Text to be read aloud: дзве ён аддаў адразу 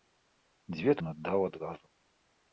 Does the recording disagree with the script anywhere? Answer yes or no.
no